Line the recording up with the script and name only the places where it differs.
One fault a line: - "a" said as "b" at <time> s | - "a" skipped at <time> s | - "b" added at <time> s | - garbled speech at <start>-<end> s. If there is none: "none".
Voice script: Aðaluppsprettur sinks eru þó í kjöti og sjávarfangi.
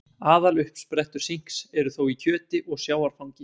none